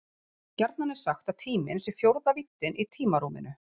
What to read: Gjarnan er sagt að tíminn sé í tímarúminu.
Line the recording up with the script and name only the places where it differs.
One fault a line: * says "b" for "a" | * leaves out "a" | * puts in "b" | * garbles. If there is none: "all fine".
* puts in "fjórða víddin"